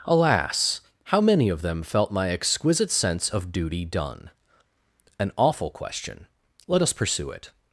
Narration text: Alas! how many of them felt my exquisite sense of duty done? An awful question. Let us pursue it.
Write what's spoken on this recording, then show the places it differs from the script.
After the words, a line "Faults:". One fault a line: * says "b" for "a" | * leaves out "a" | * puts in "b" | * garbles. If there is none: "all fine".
Alas! how many of them felt my exquisite sense of duty done? An awful question. Let us pursue it.
Faults:
all fine